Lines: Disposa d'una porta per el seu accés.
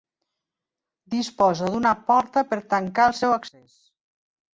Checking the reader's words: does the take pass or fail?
fail